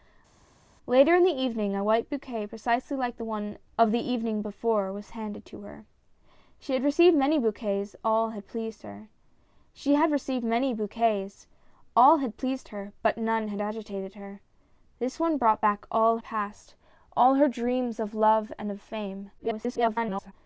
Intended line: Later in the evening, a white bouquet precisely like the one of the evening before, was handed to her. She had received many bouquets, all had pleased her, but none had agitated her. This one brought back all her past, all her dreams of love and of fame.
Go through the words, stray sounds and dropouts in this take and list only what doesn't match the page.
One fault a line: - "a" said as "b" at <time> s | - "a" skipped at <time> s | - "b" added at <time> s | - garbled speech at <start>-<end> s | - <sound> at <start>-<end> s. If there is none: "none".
- "her" skipped at 16.2 s
- garbled speech at 19.4-20.3 s